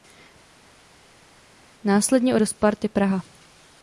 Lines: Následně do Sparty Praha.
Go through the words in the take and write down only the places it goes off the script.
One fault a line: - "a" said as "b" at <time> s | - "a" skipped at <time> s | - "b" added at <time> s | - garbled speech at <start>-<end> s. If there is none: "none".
none